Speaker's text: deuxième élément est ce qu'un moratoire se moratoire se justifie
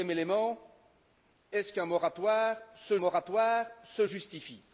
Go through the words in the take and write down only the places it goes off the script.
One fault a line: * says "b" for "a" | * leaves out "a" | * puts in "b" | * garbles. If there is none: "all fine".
all fine